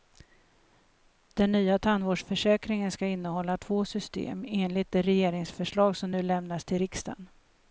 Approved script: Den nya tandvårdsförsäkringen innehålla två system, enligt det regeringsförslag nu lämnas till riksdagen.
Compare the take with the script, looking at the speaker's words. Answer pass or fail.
fail